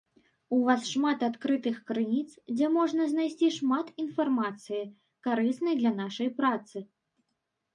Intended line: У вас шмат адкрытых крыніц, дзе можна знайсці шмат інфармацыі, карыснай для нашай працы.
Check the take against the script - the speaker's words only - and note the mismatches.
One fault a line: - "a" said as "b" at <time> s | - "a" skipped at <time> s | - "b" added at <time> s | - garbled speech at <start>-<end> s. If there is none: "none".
none